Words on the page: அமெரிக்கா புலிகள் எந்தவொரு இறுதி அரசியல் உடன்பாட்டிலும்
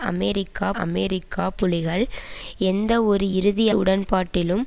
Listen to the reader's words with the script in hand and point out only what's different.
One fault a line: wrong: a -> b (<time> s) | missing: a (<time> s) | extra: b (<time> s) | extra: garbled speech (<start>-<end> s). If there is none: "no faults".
extra: அமெரிக்கா (0.8 s)
missing: அரசியல் (3.7 s)